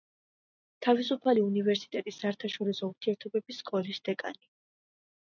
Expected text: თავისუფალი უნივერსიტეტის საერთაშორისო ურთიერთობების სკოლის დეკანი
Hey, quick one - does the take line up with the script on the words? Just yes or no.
yes